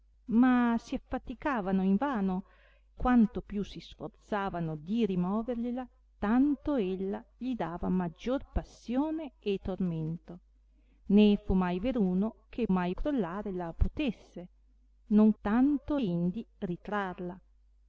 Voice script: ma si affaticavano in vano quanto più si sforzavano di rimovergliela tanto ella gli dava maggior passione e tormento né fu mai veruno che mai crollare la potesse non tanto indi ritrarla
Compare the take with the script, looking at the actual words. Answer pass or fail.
pass